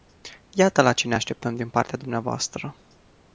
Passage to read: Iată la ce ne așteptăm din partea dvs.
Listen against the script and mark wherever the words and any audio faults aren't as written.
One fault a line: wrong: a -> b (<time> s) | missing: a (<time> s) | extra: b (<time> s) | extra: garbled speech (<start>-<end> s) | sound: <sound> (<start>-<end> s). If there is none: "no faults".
no faults